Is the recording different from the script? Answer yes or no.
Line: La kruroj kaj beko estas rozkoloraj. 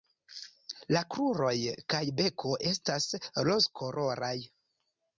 no